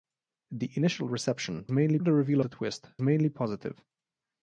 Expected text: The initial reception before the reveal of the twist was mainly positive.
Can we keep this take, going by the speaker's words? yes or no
no